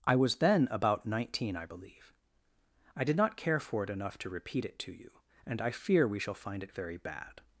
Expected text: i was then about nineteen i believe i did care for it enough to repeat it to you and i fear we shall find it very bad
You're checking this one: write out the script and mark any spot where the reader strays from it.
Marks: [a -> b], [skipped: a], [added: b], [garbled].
i was then about nineteen i believe i did [added: not] care for it enough to repeat it to you and i fear we shall find it very bad